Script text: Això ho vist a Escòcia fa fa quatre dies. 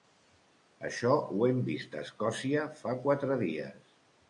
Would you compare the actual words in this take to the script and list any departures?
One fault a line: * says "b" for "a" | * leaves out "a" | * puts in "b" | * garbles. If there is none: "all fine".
* puts in "hem"
* leaves out "fa"